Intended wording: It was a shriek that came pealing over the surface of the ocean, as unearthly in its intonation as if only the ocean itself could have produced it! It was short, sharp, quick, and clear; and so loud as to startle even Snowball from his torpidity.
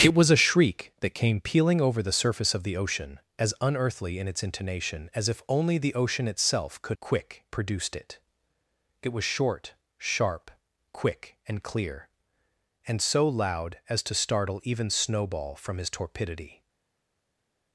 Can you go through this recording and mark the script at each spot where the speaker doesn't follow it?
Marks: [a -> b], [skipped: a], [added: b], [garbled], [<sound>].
It was a shriek that came pealing over the surface of the ocean, as unearthly in its intonation as if only the ocean itself could [have -> quick] produced it! It was short, sharp, quick, and clear; and so loud as to startle even Snowball from his torpidity.